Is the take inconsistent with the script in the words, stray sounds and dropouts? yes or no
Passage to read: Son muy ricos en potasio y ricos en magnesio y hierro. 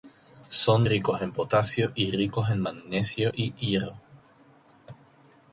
yes